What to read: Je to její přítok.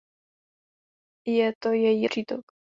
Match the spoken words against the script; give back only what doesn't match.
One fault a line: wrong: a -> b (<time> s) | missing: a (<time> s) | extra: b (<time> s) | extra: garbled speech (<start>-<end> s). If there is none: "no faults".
no faults